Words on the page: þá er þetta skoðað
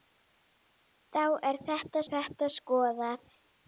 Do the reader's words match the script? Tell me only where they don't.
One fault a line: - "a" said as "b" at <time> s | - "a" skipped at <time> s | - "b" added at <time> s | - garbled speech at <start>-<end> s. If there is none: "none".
- "þetta" added at 2.1 s